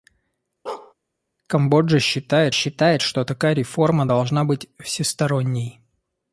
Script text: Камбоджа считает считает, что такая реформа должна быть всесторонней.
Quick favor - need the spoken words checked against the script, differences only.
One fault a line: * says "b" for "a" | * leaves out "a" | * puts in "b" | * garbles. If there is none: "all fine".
all fine